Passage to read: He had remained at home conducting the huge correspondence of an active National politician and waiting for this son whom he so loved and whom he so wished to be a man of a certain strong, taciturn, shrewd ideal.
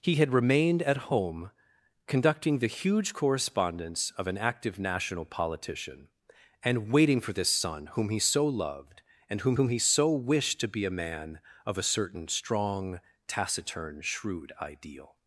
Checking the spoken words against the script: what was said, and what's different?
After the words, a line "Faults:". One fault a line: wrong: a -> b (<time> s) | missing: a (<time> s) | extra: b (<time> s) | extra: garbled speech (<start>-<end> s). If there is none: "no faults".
He had remained at home conducting the huge correspondence of an active National politician and waiting for this son whom he so loved and whom whom he so wished to be a man of a certain strong, taciturn, shrewd ideal.
Faults:
extra: whom (9.5 s)